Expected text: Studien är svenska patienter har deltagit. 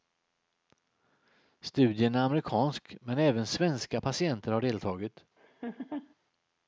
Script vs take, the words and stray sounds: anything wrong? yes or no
yes